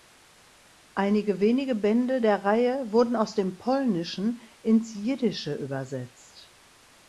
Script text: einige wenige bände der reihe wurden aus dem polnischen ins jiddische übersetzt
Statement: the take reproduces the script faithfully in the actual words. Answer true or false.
true